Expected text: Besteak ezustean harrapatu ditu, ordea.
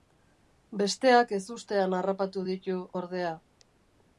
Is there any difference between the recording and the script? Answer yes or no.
no